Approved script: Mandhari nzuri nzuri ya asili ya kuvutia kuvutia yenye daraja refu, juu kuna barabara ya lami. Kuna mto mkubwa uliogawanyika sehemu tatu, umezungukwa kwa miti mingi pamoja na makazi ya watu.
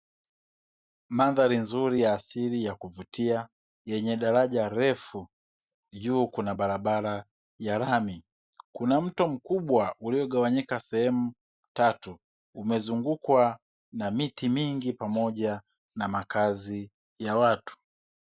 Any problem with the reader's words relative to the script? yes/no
yes